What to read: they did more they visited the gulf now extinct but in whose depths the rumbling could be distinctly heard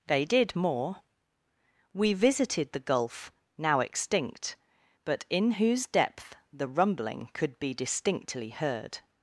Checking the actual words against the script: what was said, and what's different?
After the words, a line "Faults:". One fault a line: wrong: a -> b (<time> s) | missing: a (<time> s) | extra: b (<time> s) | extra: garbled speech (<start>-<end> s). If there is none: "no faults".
they did more we visited the gulf now extinct but in whose depth the rumbling could be distinctly heard
Faults:
wrong: they -> we (1.9 s)
wrong: depths -> depth (5.9 s)